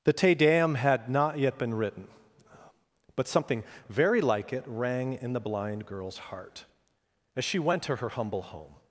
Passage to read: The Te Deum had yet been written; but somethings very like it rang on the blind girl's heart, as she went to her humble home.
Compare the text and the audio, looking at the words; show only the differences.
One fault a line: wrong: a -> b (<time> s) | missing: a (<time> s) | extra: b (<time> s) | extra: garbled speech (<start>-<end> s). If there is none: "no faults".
extra: not (1.1 s)
wrong: somethings -> something (3.3 s)
wrong: on -> in (5.1 s)